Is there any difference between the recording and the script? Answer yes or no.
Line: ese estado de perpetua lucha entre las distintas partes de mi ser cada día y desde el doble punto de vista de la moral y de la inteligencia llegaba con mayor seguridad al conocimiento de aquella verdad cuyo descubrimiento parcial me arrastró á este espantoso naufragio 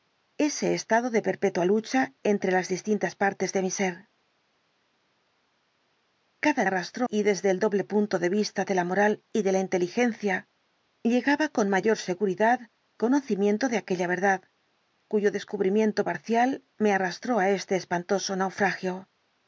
yes